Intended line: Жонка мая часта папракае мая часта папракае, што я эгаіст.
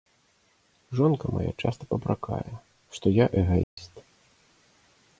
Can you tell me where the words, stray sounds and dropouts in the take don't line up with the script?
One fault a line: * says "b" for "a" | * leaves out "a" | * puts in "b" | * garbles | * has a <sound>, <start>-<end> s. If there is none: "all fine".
* leaves out "мая часта папракае"
* has a dropout, 3.6-3.8 s